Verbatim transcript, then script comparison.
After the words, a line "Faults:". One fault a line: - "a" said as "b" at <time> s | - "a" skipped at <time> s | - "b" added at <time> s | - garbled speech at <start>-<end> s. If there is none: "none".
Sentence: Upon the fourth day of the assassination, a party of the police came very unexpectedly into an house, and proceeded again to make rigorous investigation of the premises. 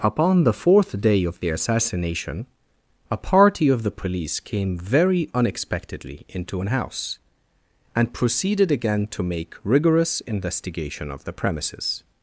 Upon the fourth day of the assassination, a party of the police came very unexpectedly into an house, and proceeded again to make rigorous investigation of the premises.
Faults:
none